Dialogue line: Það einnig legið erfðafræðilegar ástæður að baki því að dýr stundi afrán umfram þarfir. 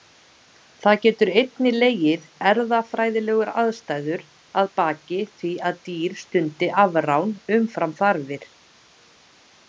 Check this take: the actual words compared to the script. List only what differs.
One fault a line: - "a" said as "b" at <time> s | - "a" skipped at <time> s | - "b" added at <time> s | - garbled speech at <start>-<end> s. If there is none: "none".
- "geta" added at 1.0 s